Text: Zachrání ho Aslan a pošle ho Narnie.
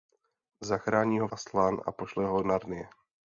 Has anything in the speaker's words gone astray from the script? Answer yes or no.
no